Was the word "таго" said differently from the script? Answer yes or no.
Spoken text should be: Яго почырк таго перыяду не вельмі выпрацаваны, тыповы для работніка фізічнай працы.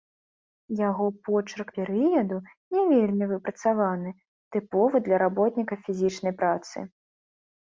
yes